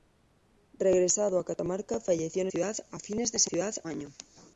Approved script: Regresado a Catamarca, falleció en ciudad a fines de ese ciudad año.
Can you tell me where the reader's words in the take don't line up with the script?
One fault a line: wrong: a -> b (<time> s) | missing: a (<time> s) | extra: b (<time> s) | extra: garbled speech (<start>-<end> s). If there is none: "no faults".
no faults